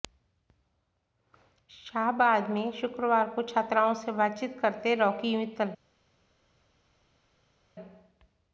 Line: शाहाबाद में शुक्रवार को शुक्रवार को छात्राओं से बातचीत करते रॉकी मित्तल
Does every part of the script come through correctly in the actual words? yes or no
no